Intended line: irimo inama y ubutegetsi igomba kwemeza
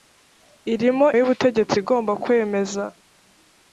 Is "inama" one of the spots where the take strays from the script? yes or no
yes